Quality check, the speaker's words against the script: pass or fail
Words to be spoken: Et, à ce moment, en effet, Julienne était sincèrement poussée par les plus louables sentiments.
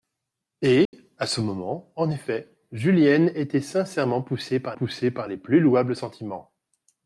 fail